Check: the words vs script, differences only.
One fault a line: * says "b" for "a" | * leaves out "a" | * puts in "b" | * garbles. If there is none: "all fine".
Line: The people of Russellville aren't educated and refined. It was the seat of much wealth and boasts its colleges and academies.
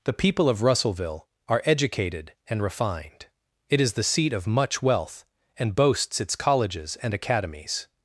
* says "are" for "aren't"
* says "is" for "was"